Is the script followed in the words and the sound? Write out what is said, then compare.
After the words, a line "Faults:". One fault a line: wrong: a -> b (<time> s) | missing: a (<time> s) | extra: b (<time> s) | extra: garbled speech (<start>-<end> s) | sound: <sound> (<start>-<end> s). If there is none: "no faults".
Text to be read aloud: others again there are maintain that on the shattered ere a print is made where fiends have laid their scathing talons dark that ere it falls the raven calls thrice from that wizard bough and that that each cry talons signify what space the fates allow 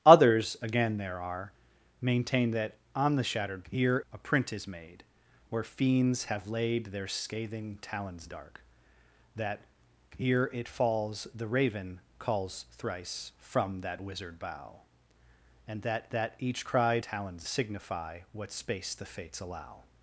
others again there are maintain that on the shattered ere a print is made where fiends have laid their scathing talons dark that ere it falls the raven calls thrice from that wizard bough and that that each cry talons signify what space the fates allow
Faults:
no faults